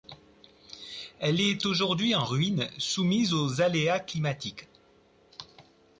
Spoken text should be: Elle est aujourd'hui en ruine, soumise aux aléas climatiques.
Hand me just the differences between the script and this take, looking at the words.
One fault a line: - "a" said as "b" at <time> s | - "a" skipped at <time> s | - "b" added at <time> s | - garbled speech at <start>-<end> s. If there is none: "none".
none